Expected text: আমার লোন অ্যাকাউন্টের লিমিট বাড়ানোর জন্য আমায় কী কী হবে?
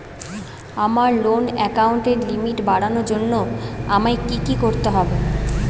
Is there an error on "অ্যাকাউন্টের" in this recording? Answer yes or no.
no